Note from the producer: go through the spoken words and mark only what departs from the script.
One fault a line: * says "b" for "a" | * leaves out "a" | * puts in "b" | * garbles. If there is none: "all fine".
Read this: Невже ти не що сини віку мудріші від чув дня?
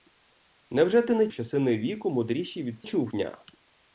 all fine